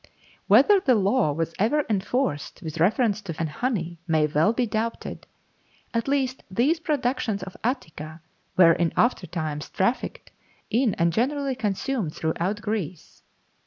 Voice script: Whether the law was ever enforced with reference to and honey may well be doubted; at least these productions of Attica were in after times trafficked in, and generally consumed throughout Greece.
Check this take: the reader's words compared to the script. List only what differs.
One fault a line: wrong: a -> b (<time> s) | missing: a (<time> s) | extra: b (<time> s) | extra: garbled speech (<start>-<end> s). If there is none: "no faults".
no faults